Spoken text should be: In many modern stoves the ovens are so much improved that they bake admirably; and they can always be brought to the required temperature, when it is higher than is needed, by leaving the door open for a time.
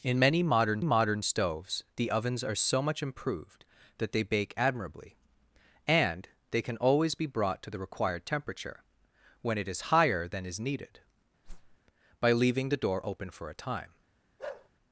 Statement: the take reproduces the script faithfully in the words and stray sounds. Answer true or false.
false